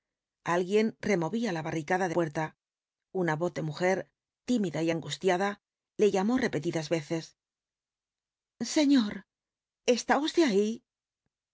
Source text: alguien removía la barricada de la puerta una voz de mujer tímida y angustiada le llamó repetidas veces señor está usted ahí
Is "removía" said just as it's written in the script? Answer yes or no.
yes